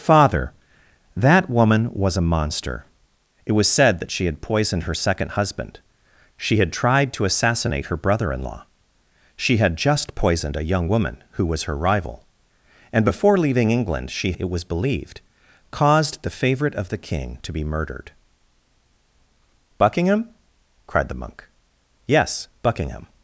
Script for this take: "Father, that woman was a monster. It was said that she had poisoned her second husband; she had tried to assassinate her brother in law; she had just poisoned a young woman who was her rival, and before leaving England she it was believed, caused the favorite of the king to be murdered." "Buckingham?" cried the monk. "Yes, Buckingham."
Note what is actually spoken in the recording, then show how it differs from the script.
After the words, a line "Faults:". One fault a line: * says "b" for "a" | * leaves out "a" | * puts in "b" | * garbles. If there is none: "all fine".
"Father, that woman was a monster. It was said that she had poisoned her second husband; she had tried to assassinate her brother in law; she had just poisoned a young woman who was her rival, and before leaving England she it was believed, caused the favorite of the king to be murdered." "Buckingham?" cried the monk. "Yes, Buckingham."
Faults:
all fine